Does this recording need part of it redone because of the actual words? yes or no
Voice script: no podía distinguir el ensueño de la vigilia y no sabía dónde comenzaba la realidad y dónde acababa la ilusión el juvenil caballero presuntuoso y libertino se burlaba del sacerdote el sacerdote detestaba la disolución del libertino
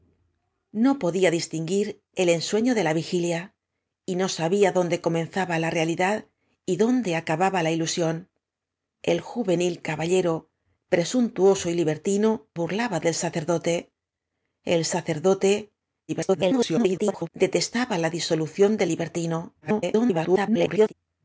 yes